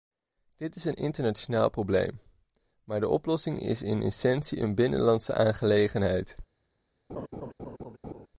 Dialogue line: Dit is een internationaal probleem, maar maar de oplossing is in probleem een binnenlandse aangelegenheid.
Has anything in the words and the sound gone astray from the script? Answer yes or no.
yes